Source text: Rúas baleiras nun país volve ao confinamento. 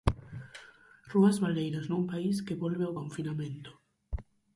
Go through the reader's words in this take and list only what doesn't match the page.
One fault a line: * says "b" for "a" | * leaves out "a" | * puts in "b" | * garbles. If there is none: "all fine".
* puts in "que"